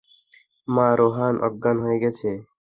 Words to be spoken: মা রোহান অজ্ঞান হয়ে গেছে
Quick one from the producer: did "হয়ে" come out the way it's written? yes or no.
yes